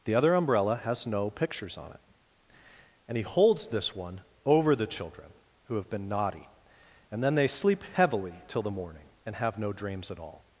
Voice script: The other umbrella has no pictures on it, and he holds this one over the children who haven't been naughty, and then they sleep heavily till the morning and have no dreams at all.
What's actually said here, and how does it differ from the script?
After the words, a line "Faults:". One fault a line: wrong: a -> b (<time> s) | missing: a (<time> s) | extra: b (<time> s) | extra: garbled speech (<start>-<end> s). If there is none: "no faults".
The other umbrella has no pictures on it, and he holds this one over the children who have been naughty, and then they sleep heavily till the morning and have no dreams at all.
Faults:
wrong: haven't -> have (5.8 s)